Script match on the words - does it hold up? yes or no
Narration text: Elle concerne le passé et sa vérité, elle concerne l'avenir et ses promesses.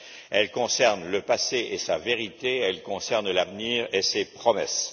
yes